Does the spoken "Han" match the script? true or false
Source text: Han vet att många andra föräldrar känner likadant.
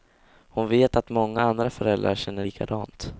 false